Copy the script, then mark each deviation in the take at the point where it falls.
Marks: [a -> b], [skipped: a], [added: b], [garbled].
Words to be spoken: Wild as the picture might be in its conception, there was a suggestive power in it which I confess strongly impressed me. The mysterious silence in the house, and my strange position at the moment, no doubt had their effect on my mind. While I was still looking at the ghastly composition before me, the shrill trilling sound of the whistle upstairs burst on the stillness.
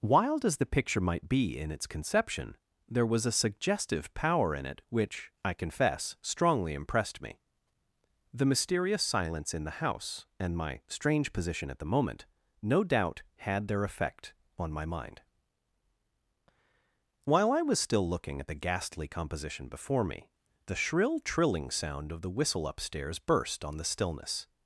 Wild as the picture might be in its conception, there was a suggestive power in it which I confess strongly impressed me. The mysterious silence in the house, and my strange position at the moment, no doubt had their effect on my mind. While I was still looking at the ghastly composition before me, the shrill trilling sound of the whistle upstairs burst on the stillness.